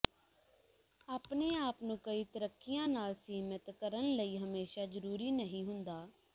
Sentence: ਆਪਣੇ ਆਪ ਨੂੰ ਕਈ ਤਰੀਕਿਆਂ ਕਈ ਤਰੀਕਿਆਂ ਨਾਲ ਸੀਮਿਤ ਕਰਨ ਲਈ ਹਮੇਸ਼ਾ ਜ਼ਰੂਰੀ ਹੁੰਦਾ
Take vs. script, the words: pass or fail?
fail